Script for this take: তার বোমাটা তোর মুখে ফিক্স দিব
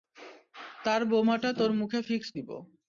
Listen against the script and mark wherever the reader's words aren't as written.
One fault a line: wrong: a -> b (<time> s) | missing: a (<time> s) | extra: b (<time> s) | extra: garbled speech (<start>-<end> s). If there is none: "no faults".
no faults